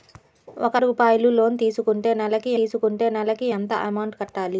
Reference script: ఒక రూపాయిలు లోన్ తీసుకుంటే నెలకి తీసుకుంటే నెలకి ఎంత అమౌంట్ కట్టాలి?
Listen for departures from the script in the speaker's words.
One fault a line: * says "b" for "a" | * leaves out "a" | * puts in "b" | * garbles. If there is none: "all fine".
all fine